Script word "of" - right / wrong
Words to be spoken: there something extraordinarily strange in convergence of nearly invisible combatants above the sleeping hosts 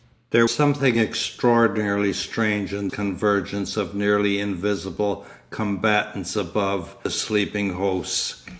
right